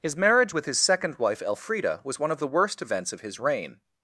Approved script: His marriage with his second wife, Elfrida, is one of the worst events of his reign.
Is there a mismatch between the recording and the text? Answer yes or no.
yes